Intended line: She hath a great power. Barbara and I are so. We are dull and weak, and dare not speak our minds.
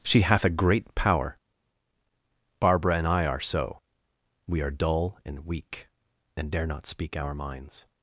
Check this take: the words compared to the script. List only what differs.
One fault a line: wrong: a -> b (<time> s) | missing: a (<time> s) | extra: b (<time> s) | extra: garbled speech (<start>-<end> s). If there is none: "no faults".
no faults